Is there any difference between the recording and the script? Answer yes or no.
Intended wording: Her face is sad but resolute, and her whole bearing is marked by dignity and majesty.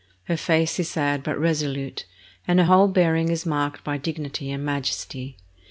no